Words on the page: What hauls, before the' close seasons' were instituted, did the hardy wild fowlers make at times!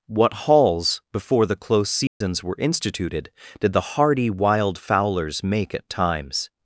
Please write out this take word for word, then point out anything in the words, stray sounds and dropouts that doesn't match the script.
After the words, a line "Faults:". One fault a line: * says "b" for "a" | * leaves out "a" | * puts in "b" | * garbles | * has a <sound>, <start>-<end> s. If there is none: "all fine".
What hauls, before the' close seasons' were instituted, did the hardy wild fowlers make at times!
Faults:
* has a dropout, 2.1-2.2 s